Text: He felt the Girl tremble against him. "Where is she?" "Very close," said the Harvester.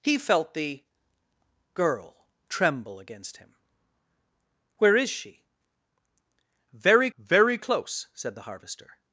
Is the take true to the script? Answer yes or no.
no